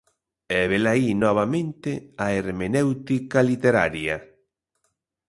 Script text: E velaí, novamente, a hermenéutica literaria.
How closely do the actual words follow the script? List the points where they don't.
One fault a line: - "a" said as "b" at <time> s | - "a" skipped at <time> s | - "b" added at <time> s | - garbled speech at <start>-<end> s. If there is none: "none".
none